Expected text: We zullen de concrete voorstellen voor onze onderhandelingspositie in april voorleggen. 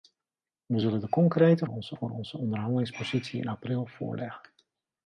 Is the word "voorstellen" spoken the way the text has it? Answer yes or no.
no